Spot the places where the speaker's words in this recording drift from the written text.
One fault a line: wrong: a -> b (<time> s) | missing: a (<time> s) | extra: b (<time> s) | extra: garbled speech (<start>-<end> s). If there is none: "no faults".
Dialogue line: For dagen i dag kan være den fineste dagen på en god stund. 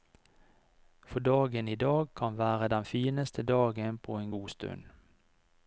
no faults